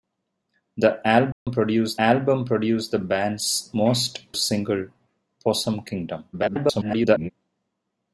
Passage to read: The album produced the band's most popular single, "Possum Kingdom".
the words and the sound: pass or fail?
fail